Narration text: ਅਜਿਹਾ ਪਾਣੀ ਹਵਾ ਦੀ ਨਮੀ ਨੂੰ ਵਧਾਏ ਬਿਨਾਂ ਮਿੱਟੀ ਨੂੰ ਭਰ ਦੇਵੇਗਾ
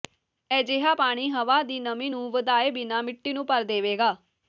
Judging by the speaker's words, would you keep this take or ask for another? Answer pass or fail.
pass